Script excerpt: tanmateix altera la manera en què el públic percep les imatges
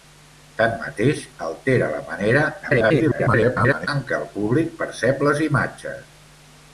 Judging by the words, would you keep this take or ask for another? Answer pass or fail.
fail